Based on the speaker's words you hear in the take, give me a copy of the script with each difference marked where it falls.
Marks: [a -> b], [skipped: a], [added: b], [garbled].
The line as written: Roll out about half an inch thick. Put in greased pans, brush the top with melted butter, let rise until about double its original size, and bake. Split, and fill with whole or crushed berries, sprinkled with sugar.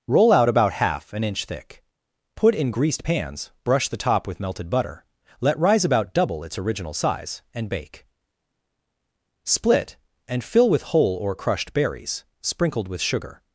Roll out about half an inch thick. Put in greased pans, brush the top with melted butter, let rise [skipped: until] about double its original size, and bake. Split, and fill with whole or crushed berries, sprinkled with sugar.